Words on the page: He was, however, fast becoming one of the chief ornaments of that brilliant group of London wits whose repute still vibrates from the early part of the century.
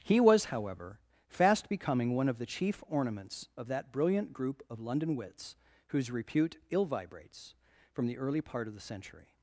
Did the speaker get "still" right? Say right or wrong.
wrong